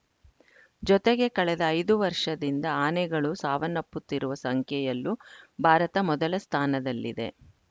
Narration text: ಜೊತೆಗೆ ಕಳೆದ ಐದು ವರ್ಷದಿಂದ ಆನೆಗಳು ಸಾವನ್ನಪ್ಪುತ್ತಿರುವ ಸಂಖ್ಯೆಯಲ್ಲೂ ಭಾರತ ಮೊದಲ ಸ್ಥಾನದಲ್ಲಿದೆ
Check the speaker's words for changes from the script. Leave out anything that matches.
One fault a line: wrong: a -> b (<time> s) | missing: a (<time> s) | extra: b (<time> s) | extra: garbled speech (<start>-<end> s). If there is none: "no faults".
no faults